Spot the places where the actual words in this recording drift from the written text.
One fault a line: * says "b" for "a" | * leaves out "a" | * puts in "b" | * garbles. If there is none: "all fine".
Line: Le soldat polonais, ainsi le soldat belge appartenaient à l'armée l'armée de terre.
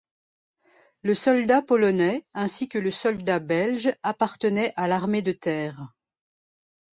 * puts in "que"
* leaves out "l'armée"